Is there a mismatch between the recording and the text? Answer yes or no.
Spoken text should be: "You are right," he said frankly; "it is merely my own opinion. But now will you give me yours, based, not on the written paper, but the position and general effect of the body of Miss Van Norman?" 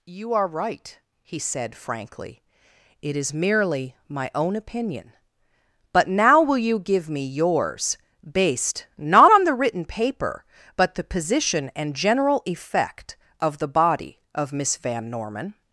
no